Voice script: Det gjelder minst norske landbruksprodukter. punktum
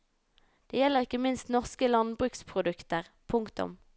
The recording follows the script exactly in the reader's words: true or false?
false